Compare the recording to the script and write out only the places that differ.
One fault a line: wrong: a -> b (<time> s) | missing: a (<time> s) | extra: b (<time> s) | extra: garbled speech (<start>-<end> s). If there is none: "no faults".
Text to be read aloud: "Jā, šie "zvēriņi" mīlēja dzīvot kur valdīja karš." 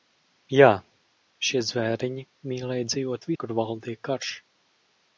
no faults